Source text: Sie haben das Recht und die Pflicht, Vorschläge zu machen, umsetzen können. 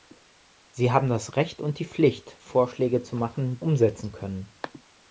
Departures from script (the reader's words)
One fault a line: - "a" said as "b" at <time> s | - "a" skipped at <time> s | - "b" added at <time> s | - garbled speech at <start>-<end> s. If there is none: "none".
none